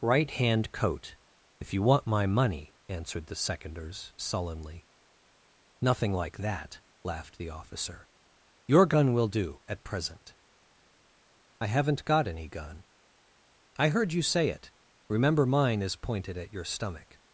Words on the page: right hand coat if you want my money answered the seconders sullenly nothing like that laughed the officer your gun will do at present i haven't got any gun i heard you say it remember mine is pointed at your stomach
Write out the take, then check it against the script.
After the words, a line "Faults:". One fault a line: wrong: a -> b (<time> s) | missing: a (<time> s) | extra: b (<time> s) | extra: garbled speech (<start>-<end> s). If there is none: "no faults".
right hand coat if you want my money answered the seconders sullenly nothing like that laughed the officer your gun will do at present i haven't got any gun i heard you say it remember mine is pointed at your stomach
Faults:
no faults